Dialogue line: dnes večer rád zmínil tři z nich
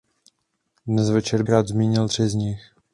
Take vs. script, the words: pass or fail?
pass